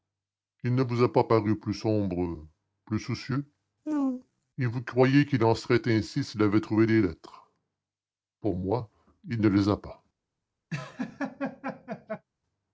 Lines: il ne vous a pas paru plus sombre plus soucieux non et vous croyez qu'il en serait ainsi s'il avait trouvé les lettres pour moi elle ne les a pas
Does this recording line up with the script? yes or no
no